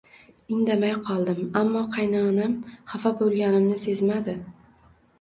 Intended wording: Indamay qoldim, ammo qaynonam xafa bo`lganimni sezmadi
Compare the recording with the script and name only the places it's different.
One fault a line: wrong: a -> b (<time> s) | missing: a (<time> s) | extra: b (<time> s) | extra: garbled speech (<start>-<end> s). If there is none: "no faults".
no faults